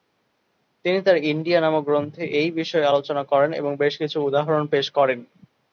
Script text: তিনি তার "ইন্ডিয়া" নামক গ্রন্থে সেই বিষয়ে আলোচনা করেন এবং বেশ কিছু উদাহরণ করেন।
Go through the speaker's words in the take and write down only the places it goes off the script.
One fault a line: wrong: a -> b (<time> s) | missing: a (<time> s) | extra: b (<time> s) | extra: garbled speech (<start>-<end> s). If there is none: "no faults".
wrong: সেই -> এই (2.4 s)
extra: পেশ (4.7 s)